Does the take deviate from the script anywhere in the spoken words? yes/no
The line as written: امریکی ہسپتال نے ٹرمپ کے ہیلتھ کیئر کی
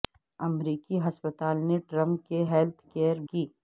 no